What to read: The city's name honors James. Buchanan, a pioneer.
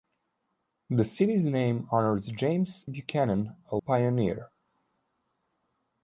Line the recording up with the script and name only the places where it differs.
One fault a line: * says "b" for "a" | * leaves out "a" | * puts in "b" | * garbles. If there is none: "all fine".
all fine